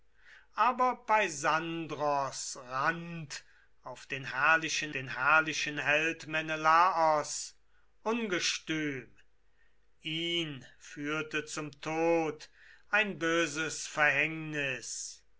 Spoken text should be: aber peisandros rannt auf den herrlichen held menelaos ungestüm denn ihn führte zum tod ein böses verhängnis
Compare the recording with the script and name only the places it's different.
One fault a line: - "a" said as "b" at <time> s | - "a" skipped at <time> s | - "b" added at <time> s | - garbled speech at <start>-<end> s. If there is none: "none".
- "den herrlichen" added at 4.9 s
- "denn" skipped at 9.2 s